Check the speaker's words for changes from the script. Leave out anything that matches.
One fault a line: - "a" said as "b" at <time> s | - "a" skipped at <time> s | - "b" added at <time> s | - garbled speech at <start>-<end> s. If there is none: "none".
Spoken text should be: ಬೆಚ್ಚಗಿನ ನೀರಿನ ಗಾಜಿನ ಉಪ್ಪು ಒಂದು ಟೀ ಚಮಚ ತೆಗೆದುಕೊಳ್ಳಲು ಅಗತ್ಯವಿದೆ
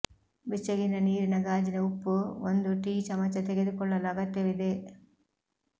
none